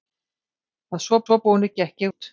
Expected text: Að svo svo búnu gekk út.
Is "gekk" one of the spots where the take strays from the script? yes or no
no